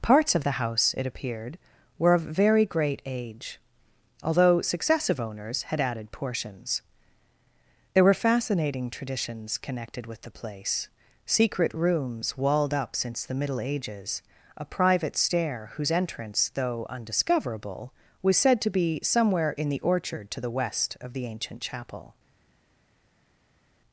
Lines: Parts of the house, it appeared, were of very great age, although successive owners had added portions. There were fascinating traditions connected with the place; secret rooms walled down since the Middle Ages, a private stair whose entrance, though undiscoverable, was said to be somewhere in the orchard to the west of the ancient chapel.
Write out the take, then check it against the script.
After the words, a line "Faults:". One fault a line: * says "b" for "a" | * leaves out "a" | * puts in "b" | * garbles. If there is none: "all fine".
Parts of the house, it appeared, were of very great age, although successive owners had added portions. There were fascinating traditions connected with the place; secret rooms walled up since the Middle Ages, a private stair whose entrance, though undiscoverable, was said to be somewhere in the orchard to the west of the ancient chapel.
Faults:
* says "up" for "down"